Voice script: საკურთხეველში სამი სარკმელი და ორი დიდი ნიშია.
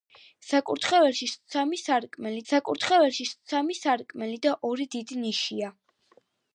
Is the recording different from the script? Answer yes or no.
yes